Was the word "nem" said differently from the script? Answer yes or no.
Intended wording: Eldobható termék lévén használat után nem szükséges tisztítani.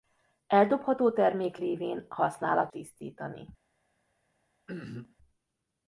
yes